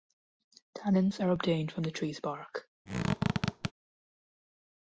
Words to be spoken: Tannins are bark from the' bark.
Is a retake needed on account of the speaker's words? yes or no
yes